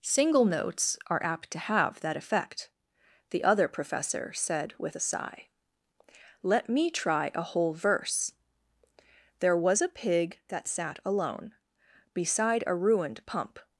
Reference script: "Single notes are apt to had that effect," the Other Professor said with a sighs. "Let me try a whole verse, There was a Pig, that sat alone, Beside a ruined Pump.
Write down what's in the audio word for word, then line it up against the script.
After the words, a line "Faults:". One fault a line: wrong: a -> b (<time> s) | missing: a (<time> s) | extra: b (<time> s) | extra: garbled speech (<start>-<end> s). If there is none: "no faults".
"Single notes are apt to have that effect," the Other Professor said with a sigh. "Let me try a whole verse, There was a Pig, that sat alone, Beside a ruined Pump.
Faults:
wrong: had -> have (1.6 s)
wrong: sighs -> sigh (5.0 s)